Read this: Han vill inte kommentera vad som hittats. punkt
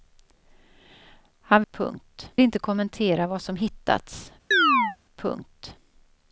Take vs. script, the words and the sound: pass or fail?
fail